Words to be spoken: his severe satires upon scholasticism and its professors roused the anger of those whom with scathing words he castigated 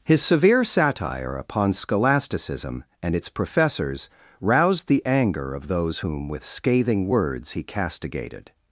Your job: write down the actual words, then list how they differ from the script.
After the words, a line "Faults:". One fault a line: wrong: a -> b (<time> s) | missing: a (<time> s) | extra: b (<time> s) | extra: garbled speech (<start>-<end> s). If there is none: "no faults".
his severe satire upon scholasticism and its professors roused the anger of those whom with scathing words he castigated
Faults:
wrong: satires -> satire (0.6 s)